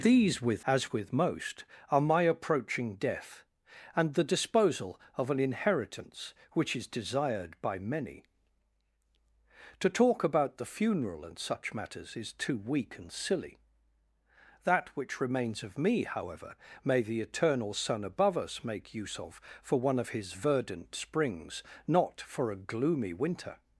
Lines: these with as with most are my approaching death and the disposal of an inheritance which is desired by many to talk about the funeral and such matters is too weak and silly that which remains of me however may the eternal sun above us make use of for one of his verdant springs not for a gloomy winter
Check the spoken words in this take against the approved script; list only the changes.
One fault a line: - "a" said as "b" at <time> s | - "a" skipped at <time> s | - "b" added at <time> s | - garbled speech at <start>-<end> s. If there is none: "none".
none